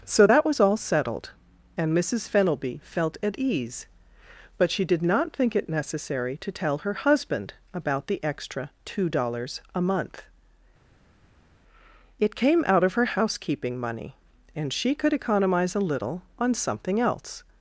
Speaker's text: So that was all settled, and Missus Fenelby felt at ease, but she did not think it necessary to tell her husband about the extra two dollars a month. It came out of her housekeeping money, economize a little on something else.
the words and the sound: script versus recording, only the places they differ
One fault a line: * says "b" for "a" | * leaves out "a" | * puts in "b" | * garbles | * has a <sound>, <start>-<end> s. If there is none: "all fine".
* puts in "and she could"